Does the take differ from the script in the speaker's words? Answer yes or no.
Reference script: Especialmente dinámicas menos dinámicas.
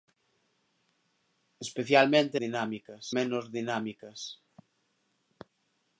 no